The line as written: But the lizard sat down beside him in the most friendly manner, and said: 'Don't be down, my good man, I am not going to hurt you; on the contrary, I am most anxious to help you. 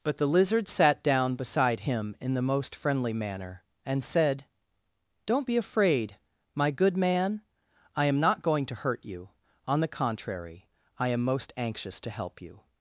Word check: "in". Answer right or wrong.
right